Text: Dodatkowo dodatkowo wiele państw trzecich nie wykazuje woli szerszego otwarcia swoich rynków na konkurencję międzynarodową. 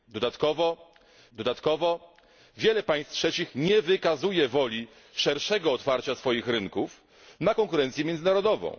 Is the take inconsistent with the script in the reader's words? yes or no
no